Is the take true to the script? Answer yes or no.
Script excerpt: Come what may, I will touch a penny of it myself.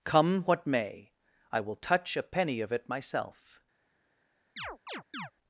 yes